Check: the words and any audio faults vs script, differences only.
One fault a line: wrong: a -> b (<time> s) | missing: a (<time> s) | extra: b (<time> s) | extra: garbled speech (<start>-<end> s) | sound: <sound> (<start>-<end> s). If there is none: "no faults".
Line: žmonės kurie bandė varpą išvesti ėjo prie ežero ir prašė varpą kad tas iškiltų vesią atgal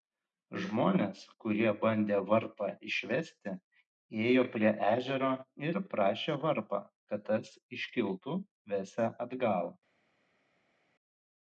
no faults